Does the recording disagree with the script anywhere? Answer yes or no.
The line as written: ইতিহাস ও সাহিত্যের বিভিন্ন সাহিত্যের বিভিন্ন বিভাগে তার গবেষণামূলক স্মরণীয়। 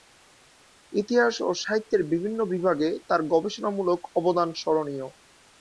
yes